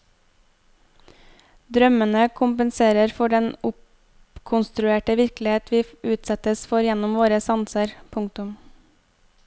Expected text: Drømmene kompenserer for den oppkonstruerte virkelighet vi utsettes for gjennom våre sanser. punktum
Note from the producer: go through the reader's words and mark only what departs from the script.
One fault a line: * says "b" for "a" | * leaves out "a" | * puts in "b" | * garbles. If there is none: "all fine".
all fine